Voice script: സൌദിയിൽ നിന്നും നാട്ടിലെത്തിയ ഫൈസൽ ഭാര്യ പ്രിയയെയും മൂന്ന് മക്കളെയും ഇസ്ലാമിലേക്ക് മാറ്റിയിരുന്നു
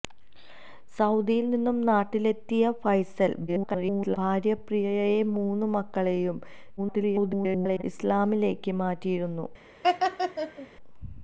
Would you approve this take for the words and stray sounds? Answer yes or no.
no